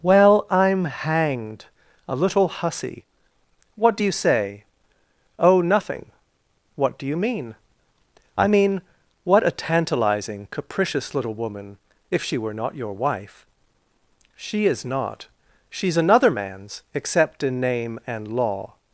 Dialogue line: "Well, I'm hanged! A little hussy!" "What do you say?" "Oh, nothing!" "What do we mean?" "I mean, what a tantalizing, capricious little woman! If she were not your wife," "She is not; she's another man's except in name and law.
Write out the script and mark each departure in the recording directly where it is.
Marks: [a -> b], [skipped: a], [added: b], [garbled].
"Well, I'm hanged! A little hussy!" "What do you say?" "Oh, nothing!" "What do [we -> you] mean?" "I mean, what a tantalizing, capricious little woman! If she were not your wife," "She is not; she's another man's except in name and law.